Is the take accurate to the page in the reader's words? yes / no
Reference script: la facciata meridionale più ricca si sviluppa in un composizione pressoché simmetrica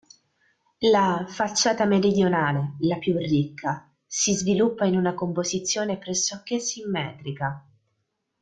no